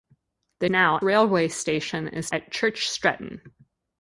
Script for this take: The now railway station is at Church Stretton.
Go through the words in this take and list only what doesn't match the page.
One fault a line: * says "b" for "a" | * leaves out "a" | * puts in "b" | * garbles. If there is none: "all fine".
all fine